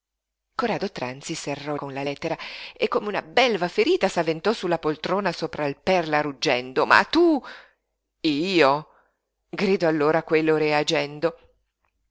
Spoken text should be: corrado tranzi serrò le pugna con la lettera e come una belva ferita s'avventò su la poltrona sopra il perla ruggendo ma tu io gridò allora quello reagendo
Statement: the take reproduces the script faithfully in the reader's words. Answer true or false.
false